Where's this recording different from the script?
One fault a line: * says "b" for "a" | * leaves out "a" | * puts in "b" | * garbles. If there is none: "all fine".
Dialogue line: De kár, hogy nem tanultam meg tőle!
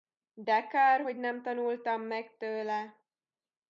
all fine